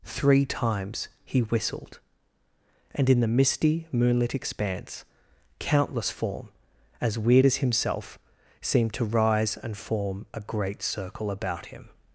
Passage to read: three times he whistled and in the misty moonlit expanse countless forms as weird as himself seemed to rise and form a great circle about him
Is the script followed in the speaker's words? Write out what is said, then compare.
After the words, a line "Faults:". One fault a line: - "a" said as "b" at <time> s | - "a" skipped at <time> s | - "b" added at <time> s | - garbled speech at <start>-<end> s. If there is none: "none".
three times he whistled and in the misty moonlit expanse countless form as weird as himself seemed to rise and form a great circle about him
Faults:
- "forms" said as "form" at 6.1 s